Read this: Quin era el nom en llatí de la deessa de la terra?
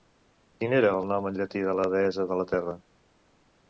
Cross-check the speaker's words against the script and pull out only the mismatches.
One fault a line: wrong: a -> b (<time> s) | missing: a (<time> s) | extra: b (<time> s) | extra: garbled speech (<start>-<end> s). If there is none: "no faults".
no faults